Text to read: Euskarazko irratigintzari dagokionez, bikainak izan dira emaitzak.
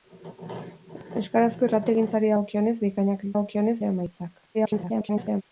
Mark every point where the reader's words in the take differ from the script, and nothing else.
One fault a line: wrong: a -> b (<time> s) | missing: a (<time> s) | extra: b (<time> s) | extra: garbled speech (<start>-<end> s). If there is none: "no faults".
wrong: izan -> dagokionez (3.3 s)
extra: garbled speech (4.5-5.4 s)